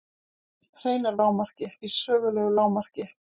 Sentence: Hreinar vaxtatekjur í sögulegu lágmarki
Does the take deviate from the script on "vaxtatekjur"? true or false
true